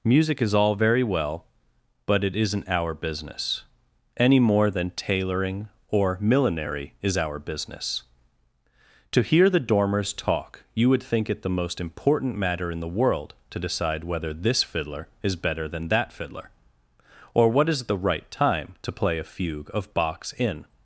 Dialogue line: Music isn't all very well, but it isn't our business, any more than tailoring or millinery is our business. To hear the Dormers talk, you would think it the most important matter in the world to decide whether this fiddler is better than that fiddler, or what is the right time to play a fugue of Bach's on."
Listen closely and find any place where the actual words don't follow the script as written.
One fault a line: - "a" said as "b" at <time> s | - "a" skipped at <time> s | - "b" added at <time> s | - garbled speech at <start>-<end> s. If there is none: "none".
- "isn't" said as "is" at 0.4 s
- "on" said as "in" at 20.3 s